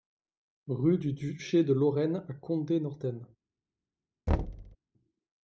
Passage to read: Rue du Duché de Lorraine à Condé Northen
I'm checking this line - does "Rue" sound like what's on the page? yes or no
yes